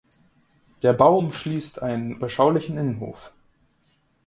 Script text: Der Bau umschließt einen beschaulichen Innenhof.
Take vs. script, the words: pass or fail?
pass